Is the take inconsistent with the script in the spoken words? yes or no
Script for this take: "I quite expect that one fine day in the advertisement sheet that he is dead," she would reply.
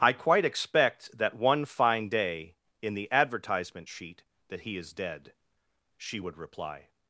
no